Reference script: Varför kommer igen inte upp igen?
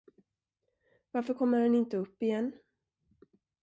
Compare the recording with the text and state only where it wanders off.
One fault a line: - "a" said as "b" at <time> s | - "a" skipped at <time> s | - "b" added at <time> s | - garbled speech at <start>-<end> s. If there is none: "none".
- "igen" said as "han" at 1.6 s